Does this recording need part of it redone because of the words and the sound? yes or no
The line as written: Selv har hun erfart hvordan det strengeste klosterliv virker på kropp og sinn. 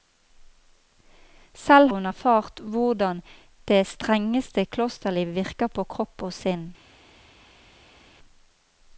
yes